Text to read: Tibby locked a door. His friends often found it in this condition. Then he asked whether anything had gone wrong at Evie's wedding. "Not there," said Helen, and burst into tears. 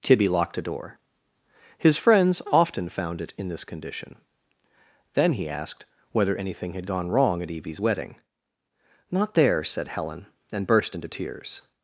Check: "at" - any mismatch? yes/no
no